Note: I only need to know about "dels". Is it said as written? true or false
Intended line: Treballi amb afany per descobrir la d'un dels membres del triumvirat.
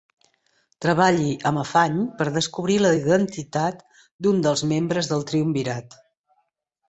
true